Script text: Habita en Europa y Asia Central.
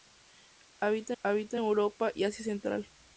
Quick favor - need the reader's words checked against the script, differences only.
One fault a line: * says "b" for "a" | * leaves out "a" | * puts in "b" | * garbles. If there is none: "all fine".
* puts in "habita"